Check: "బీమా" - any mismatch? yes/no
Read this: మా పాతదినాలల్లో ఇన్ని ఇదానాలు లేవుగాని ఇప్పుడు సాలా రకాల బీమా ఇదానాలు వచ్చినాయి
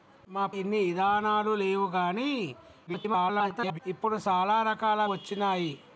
yes